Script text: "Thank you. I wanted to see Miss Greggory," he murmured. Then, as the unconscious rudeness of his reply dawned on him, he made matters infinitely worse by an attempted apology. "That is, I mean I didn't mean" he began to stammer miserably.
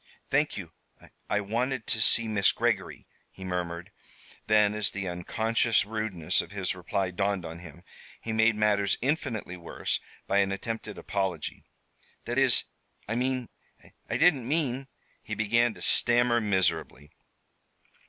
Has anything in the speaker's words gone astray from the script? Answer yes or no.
no